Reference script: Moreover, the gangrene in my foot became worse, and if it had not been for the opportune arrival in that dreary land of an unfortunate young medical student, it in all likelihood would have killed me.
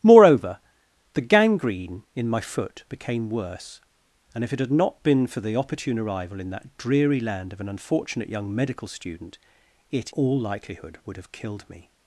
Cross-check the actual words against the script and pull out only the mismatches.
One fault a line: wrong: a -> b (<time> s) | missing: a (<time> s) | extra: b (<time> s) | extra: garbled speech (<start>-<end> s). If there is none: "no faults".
missing: in (10.1 s)